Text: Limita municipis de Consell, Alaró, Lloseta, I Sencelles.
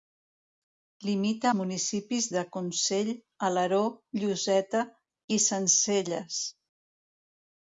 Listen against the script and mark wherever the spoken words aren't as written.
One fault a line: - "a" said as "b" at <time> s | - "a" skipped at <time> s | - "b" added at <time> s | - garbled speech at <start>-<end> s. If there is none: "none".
none